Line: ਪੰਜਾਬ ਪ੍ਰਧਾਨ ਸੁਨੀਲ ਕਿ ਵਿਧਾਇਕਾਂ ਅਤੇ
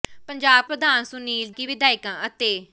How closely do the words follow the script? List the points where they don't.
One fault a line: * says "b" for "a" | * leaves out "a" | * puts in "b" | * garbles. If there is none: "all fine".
all fine